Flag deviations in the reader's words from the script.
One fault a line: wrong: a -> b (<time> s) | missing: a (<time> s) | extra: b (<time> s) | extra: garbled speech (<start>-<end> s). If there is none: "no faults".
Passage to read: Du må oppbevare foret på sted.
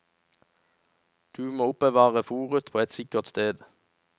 extra: et sikkert (2.8 s)